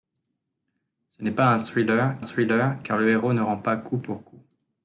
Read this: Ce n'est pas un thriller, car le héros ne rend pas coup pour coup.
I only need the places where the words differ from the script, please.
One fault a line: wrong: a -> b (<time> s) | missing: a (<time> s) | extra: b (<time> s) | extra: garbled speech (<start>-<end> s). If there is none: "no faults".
extra: thriller (2.2 s)